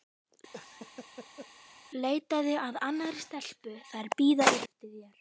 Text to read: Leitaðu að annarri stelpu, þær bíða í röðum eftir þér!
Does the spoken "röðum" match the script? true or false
false